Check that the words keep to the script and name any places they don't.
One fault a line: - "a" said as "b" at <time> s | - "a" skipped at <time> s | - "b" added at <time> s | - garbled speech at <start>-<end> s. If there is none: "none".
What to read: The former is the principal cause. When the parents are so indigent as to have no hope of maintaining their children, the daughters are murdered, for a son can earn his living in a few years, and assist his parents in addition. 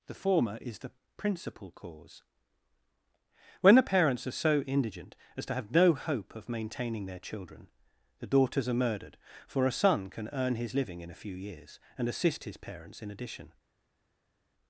none